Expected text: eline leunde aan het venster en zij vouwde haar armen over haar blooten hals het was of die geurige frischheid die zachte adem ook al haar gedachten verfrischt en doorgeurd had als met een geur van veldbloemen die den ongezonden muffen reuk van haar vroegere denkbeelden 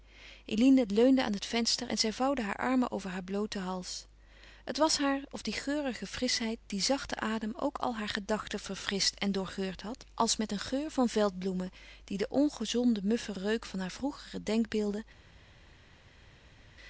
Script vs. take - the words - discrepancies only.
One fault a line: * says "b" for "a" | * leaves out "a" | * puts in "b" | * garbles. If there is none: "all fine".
* puts in "haar"